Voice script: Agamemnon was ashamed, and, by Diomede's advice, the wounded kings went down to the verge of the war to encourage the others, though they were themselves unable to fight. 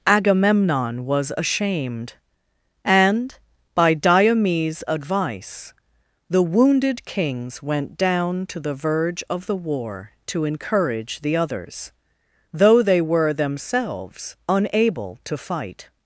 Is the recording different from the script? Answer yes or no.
no